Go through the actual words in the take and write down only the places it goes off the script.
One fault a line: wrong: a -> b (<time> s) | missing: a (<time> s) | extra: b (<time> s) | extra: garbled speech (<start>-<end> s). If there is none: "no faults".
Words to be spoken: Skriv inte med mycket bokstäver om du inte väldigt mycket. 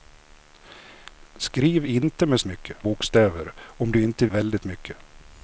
no faults